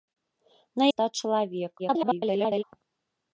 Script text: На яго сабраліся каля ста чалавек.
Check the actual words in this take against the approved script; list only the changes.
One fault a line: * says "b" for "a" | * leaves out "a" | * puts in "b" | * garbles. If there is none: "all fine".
* leaves out "яго сабраліся каля"
* garbles